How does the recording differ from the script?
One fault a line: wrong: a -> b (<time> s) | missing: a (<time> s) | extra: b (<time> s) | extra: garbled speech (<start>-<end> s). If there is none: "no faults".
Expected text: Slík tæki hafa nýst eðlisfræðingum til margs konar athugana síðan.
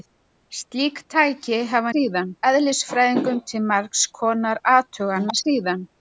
wrong: nýst -> síðan (1.9 s)